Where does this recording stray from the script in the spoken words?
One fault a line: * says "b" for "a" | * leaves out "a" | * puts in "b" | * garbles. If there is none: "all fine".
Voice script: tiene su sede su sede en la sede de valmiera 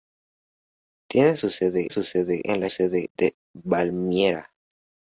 all fine